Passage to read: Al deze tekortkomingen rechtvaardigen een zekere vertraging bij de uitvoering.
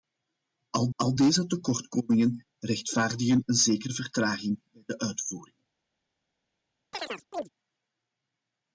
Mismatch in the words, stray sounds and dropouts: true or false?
true